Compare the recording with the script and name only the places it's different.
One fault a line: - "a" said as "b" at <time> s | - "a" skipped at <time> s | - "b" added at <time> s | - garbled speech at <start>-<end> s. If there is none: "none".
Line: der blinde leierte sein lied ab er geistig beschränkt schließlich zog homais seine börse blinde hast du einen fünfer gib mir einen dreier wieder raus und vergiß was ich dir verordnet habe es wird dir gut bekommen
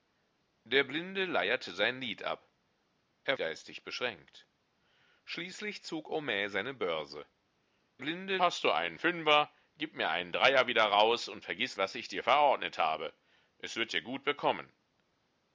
none